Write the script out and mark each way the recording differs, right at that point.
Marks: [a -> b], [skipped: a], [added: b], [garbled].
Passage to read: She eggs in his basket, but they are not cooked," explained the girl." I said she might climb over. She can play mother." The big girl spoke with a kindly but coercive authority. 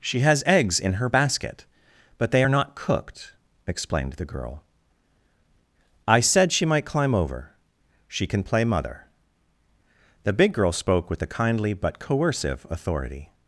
She [added: has] eggs in [his -> her] basket, but they are not cooked," explained the girl." I said she might climb over. She can play mother." The big girl spoke with a kindly but coercive authority.